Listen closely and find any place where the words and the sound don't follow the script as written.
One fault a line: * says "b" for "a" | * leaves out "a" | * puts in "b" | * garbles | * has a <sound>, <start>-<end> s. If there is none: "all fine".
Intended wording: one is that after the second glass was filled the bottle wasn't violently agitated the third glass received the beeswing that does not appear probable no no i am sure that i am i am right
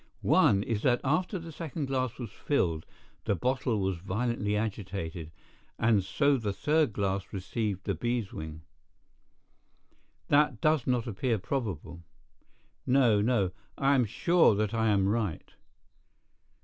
* says "was" for "wasn't"
* puts in "and so"
* leaves out "i am"